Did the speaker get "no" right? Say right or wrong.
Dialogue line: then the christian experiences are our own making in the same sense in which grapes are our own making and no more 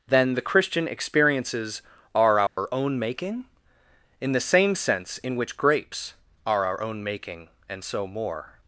wrong